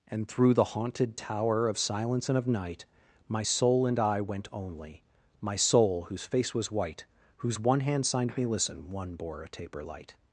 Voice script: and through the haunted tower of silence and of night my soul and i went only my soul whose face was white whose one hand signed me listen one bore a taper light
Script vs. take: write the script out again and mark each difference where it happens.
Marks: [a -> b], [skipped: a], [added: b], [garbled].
and through the haunted tower of silence and of night my soul and i went only my soul whose face was white whose one hand signed me listen one bore a taper light